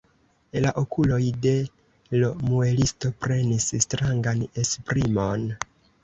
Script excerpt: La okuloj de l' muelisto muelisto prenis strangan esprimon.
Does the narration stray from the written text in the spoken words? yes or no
yes